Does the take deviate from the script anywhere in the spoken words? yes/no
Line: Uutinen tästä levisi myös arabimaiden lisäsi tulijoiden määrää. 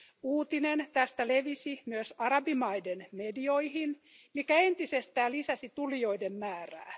yes